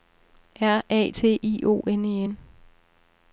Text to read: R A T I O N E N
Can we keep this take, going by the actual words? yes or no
yes